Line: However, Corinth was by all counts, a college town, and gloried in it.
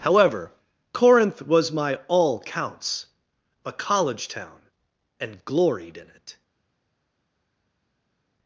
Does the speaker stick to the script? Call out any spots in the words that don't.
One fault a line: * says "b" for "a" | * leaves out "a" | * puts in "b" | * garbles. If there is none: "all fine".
* says "my" for "by"